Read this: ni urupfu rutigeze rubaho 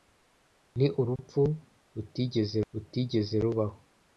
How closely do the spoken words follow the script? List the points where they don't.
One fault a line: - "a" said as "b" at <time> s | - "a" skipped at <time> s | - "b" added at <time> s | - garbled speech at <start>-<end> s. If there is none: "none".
- "rutigeze" added at 2.7 s